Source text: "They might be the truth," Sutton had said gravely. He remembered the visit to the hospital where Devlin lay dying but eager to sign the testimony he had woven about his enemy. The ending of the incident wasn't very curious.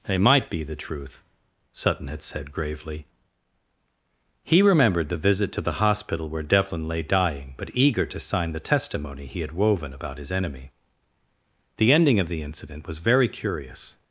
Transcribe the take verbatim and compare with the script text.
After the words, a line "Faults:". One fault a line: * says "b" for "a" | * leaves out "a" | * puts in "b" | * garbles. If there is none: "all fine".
"They might be the truth," Sutton had said gravely. He remembered the visit to the hospital where Devlin lay dying but eager to sign the testimony he had woven about his enemy. The ending of the incident was very curious.
Faults:
* says "was" for "wasn't"